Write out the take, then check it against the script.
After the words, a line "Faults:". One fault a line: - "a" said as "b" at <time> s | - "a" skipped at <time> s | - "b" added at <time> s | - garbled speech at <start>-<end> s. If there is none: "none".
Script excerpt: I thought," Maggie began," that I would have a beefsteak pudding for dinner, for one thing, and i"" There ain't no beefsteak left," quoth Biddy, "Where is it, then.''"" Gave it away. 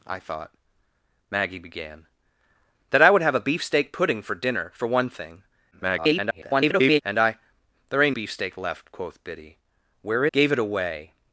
I thought," Maggie began," that I would have a beefsteak pudding for dinner, for one thing, [garbled] and i"" There ain't beefsteak left," quoth Biddy, "Where.''"" Gave it away.
Faults:
- garbled speech at 5.7-7.0 s
- "no" skipped at 8.1 s
- "is it then" skipped at 10.3 s